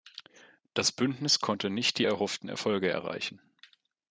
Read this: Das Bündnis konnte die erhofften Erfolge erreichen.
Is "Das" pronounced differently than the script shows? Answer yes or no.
no